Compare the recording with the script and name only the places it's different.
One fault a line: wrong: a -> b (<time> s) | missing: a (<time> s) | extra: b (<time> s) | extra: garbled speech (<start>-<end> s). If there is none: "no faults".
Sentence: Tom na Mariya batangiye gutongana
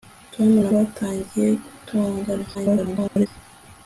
missing: Mariya (0.7 s)
extra: garbled speech (2.5-3.3 s)